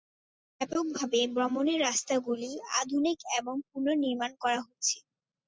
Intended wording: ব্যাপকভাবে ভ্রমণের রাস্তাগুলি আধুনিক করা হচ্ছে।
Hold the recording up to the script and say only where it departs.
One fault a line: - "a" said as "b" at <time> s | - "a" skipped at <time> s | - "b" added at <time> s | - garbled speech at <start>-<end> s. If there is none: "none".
- "এবং পুনর্নির্মাণ" added at 3.4 s